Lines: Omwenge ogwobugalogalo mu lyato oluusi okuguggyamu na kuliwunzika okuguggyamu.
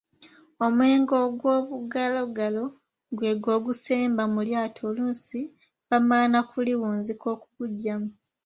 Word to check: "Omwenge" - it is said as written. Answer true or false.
true